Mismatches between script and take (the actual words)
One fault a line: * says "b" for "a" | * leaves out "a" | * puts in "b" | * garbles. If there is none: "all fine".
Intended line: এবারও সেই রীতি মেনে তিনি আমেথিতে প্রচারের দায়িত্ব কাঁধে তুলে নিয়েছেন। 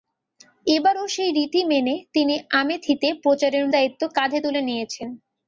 all fine